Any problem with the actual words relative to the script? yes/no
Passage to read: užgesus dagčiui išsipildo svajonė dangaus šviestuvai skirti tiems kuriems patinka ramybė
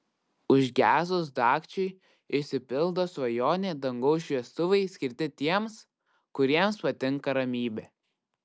no